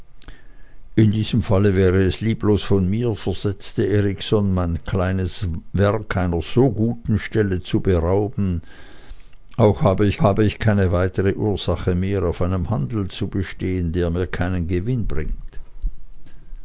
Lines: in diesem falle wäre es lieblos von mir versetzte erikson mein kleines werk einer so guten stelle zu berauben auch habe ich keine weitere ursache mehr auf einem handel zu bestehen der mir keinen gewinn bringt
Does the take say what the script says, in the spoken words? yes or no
no